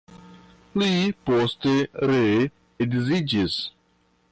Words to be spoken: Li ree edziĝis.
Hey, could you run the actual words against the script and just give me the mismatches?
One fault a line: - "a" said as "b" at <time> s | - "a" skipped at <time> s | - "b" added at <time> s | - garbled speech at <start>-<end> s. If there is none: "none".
- "poste" added at 1.3 s